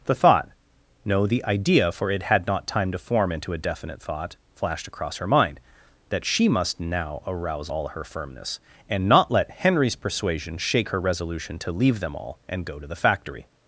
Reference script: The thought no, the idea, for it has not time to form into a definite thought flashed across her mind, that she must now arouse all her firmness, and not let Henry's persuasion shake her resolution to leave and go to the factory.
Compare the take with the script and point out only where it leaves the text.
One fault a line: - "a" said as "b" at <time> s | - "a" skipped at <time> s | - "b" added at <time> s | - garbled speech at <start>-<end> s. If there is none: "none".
- "has" said as "had" at 2.2 s
- "them all" added at 12.0 s